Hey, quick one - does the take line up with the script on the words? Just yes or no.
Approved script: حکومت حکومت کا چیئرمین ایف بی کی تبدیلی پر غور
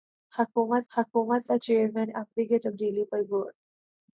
yes